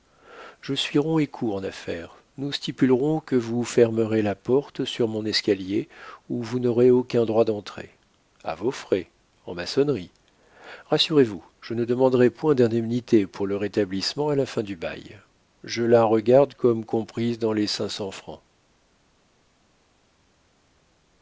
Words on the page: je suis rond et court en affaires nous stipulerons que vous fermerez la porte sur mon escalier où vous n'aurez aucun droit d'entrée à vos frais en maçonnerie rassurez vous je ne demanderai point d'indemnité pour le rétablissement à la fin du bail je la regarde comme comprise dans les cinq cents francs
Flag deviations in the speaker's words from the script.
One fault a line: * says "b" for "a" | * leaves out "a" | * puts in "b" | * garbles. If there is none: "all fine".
all fine